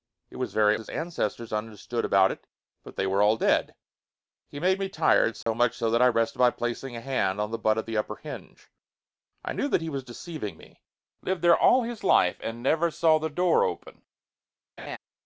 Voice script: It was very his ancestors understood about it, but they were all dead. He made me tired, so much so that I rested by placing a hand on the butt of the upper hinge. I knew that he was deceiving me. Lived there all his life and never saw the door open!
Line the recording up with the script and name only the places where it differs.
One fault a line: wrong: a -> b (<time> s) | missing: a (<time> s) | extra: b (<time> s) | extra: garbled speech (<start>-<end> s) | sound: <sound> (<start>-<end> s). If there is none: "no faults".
sound: dropout (5.4-5.5 s)
sound: laugh (14.8-15.0 s)